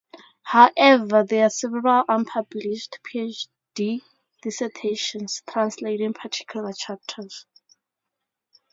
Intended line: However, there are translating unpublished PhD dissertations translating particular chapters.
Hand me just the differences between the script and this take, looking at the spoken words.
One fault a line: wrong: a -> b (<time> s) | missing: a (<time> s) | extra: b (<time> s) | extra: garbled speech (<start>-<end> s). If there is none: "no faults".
wrong: translating -> several (1.5 s)